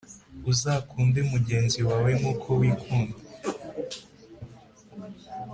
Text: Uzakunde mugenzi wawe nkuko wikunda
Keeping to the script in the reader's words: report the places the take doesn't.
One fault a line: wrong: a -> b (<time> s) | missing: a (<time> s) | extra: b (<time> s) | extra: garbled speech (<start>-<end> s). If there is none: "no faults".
no faults